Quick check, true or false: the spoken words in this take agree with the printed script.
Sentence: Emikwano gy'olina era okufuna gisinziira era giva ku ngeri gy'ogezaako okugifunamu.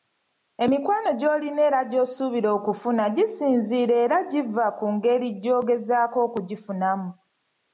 false